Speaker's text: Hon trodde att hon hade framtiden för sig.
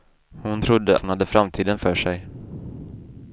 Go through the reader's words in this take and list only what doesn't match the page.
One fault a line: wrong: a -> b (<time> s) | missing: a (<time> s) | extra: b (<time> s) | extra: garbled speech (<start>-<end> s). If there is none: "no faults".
missing: att (1.0 s)